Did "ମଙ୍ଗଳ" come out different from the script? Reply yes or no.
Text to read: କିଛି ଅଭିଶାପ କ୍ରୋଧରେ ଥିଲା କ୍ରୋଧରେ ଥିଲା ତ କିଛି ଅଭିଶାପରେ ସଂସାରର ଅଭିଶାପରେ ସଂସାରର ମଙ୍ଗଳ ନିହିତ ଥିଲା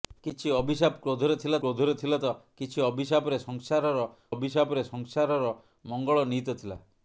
no